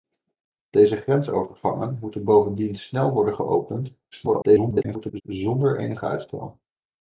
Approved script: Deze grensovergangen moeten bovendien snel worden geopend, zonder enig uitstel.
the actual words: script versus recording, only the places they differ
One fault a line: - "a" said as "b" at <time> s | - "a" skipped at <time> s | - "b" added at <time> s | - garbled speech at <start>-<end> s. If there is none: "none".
- garbled speech at 4.1-5.2 s